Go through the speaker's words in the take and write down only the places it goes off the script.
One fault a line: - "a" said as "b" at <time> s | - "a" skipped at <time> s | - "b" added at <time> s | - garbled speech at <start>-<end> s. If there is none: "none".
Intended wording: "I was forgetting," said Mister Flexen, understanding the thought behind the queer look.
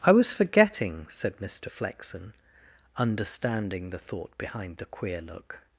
none